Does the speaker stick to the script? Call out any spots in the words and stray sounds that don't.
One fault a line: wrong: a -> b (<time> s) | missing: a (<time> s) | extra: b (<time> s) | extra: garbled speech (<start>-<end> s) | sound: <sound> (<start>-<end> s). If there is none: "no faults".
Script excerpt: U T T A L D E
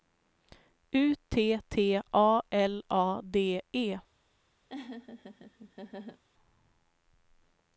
extra: A (2.9 s)
sound: laugh (4.7-6.2 s)